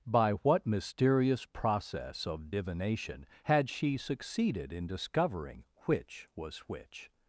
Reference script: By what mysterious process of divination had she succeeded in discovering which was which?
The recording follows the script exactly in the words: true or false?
true